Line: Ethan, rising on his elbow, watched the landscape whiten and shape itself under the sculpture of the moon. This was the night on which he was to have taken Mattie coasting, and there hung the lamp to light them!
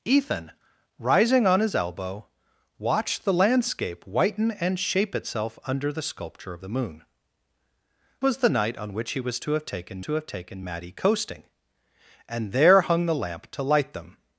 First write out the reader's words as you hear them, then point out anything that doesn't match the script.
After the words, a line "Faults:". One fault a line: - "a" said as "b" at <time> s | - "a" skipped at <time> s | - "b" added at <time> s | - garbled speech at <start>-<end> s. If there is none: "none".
Ethan, rising on his elbow, watched the landscape whiten and shape itself under the sculpture of the moon. Was the night on which he was to have taken to have taken Mattie coasting, and there hung the lamp to light them!
Faults:
- "This" skipped at 7.0 s
- "to have taken" added at 10.0 s